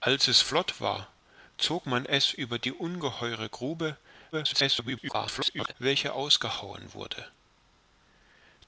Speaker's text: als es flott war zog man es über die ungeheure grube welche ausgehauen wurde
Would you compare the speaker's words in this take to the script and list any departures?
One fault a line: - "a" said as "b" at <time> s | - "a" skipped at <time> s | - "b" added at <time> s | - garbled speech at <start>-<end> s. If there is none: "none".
- garbled speech at 4.3-5.7 s